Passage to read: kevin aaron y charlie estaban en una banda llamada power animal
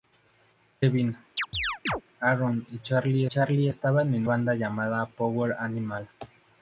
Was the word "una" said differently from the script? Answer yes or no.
yes